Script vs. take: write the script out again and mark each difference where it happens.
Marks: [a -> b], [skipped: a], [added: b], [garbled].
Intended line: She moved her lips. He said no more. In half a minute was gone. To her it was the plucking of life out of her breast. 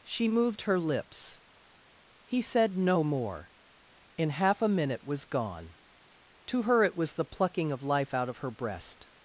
She moved her lips. He said no more. In half a minute was gone. To her it was the plucking of life out of her breast.